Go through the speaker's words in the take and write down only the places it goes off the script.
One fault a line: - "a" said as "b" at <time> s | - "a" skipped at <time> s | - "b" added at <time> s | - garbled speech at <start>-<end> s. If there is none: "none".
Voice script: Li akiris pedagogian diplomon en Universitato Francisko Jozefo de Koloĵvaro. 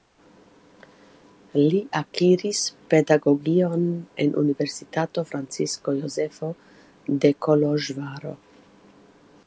- "diplomon" skipped at 3.9 s